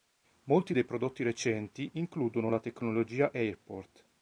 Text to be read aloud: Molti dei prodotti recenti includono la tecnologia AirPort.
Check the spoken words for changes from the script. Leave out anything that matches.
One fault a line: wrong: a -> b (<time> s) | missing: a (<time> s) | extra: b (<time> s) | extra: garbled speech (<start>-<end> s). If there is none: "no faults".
no faults